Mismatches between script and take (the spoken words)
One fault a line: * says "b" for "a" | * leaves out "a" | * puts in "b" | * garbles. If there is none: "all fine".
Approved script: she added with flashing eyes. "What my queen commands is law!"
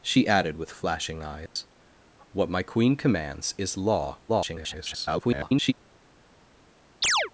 * garbles